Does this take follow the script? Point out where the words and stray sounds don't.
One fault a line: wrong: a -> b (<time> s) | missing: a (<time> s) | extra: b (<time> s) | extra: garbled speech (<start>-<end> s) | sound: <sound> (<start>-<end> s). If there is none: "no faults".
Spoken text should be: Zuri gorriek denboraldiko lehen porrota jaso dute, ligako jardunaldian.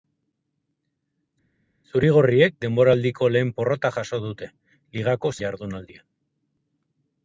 no faults